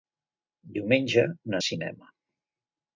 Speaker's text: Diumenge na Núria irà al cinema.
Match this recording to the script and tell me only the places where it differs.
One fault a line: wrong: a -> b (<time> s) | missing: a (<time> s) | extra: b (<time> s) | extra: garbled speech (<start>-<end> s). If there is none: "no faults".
missing: Núria irà al (1.6 s)